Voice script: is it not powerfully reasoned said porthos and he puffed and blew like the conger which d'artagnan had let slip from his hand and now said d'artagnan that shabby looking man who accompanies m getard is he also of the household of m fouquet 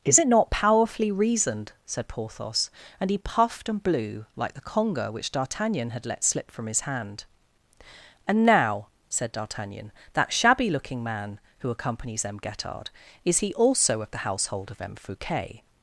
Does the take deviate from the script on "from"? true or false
false